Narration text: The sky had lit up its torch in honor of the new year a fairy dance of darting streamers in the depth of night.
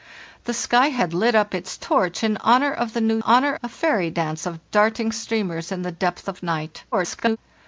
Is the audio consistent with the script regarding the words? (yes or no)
no